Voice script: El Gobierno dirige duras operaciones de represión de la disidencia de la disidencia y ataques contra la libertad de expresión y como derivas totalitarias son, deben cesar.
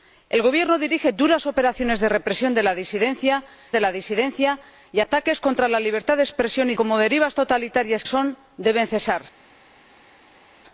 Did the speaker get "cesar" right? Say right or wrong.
right